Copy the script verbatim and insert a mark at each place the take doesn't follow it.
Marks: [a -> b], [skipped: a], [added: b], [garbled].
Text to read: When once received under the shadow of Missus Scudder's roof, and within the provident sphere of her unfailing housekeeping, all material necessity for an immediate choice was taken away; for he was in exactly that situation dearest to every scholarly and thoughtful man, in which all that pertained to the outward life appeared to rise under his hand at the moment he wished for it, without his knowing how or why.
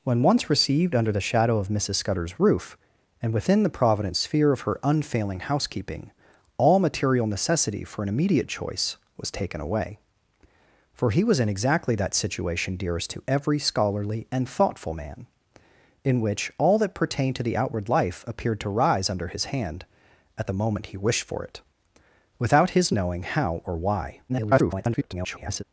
When once received under the shadow of Missus Scudder's roof, and within the provident sphere of her unfailing housekeeping, all material necessity for an immediate choice was taken away; for he was in exactly that situation dearest to every scholarly and thoughtful man, in which all that pertained to the outward life appeared to rise under his hand at the moment he wished for it, without his knowing how or why. [garbled]